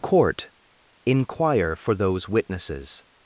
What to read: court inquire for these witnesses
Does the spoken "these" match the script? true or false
false